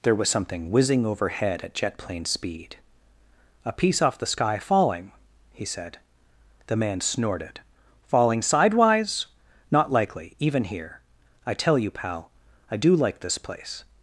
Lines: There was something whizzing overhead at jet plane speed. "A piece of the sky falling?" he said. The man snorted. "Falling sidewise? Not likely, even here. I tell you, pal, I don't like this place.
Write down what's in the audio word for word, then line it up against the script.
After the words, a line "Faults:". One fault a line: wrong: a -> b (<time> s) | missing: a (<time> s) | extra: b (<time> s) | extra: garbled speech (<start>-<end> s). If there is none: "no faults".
There was something whizzing overhead at jet plane speed. "A piece off the sky falling?" he said. The man snorted. "Falling sidewise? Not likely, even here. I tell you, pal, I do like this place.
Faults:
wrong: of -> off (4.0 s)
wrong: don't -> do (12.8 s)